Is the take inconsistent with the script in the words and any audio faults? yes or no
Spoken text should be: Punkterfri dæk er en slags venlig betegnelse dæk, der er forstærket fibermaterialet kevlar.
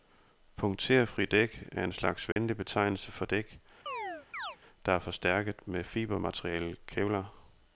yes